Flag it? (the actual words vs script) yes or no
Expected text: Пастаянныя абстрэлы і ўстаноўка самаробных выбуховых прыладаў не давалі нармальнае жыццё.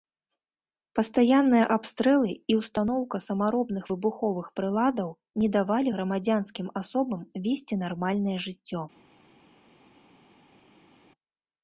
yes